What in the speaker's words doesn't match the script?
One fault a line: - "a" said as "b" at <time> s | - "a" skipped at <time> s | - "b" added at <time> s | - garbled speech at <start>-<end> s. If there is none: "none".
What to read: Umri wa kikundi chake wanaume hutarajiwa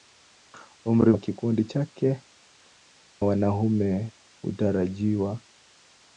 none